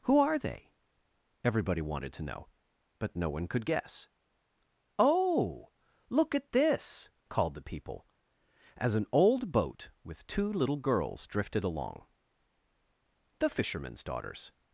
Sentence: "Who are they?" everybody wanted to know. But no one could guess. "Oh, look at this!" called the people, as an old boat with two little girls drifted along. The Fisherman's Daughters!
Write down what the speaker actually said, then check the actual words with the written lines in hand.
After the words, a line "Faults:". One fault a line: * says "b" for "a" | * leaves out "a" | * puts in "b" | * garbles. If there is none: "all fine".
"Who are they?" everybody wanted to know. But no one could guess. "Oh, look at this!" called the people, as an old boat with two little girls drifted along. The Fisherman's Daughters!
Faults:
all fine